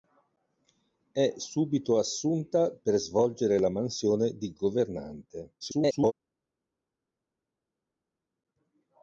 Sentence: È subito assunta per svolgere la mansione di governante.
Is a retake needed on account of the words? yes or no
yes